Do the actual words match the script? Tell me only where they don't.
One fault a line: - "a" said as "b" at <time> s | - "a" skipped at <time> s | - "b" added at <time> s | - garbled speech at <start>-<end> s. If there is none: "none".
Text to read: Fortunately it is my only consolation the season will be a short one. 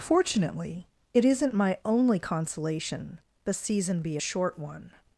- "is" said as "isn't" at 1.2 s
- "will" skipped at 4.0 s